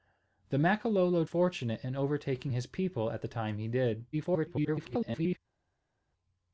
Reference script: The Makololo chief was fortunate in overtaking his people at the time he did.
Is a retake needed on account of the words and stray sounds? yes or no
yes